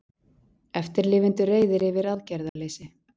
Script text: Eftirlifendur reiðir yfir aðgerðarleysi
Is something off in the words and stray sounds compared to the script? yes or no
yes